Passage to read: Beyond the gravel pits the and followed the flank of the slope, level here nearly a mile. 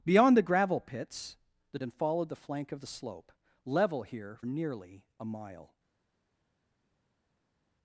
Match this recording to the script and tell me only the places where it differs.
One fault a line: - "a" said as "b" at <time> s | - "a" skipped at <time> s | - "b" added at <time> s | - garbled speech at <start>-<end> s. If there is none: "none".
none